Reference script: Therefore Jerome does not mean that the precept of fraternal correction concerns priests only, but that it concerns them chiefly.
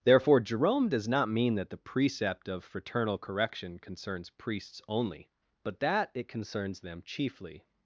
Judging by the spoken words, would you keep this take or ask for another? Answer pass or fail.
pass